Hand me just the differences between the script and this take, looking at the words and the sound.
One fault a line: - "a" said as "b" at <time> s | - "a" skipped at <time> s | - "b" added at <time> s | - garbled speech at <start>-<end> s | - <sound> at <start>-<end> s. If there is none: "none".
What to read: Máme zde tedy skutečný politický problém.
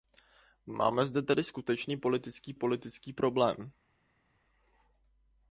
- "politický" added at 2.5 s